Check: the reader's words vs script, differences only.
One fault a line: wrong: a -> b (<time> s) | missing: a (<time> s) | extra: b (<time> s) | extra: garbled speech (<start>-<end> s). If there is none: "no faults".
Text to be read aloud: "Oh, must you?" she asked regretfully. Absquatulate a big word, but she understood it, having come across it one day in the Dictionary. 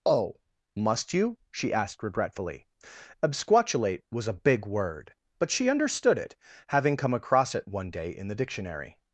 extra: was (4.1 s)